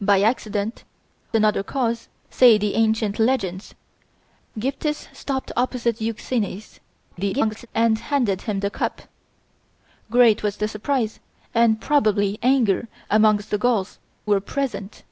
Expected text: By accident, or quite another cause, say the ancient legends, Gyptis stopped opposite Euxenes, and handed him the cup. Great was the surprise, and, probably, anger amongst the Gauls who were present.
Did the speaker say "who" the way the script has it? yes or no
no